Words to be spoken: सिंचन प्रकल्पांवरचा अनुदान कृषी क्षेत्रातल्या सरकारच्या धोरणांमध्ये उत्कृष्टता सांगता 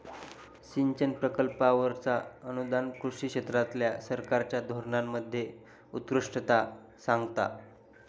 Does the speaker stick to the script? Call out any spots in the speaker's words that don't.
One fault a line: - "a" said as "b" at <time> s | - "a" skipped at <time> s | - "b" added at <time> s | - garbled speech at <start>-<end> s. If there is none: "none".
none